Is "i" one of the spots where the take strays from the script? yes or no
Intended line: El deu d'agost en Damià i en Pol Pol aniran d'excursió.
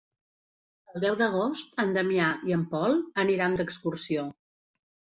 no